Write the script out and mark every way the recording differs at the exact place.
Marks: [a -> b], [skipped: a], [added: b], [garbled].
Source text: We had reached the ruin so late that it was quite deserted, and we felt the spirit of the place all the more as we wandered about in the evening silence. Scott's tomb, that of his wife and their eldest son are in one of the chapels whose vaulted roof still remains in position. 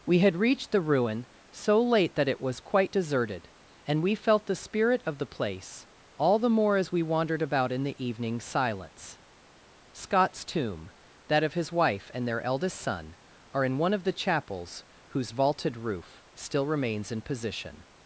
We had reached the ruin so late that it was quite deserted, and we felt the spirit of the place all the more as we wandered about in the evening silence. Scott's tomb, that of his wife and their eldest son are in one of the chapels whose vaulted roof still remains in position.